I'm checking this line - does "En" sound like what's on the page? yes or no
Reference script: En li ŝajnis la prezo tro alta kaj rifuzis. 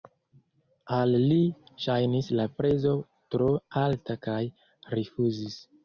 no